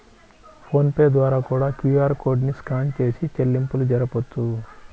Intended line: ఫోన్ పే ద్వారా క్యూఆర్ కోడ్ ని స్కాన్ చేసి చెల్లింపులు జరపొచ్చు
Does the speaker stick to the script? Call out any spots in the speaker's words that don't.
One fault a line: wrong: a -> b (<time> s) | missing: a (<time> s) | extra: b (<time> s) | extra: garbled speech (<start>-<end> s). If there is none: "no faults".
extra: కూడా (1.5 s)